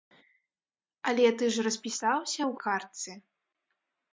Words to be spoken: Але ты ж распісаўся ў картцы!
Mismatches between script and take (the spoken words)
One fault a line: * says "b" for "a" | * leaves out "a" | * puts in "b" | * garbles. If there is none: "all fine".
all fine